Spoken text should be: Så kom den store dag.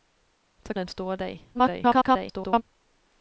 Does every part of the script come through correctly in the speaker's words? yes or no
no